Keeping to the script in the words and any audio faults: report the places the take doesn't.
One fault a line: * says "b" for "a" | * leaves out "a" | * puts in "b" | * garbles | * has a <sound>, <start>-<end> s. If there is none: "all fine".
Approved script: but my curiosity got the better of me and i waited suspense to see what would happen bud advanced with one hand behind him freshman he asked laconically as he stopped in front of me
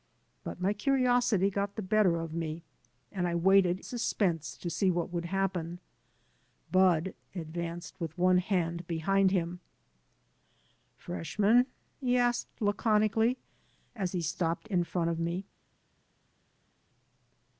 all fine